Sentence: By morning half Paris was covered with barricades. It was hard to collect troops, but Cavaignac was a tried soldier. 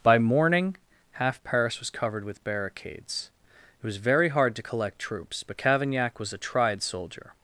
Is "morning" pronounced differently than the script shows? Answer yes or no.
no